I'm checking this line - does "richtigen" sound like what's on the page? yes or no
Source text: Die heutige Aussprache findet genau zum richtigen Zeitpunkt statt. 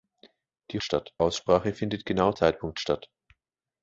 no